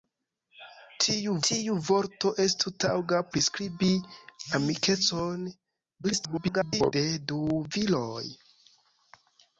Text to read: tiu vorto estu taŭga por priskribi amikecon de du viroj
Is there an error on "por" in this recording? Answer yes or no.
yes